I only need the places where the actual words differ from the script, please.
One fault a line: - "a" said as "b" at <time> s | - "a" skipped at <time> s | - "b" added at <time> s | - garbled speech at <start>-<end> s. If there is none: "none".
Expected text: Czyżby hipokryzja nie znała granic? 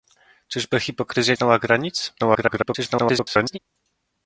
- "nie" skipped at 1.4 s
- garbled speech at 2.2-3.6 s